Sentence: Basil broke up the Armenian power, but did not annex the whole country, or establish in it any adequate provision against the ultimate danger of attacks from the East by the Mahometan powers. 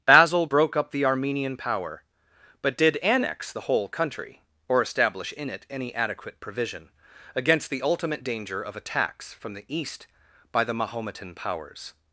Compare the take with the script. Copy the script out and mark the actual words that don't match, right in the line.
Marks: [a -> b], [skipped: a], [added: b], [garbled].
Basil broke up the Armenian power, but did [skipped: not] annex the whole country, or establish in it any adequate provision against the ultimate danger of attacks from the East by the Mahometan powers.